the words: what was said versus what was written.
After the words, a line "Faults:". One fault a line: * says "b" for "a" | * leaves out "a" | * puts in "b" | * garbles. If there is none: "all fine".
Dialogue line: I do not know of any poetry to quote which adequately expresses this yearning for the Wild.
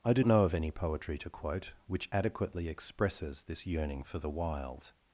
I do know of any poetry to quote which adequately expresses this yearning for the Wild.
Faults:
* leaves out "not"